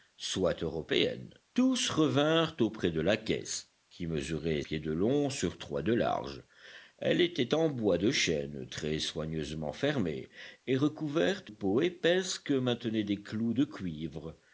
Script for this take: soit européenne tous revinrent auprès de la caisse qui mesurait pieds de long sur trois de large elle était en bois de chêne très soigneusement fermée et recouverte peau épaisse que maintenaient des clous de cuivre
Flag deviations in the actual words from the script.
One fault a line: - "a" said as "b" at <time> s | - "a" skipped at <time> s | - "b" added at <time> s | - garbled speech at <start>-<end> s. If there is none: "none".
none